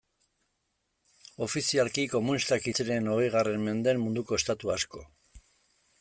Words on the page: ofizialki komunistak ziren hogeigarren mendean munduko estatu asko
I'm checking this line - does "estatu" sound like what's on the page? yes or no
yes